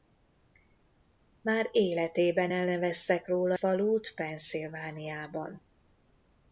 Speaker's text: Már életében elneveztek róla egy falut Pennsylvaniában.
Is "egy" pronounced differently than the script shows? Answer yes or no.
yes